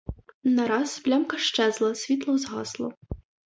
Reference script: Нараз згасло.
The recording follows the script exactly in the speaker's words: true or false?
false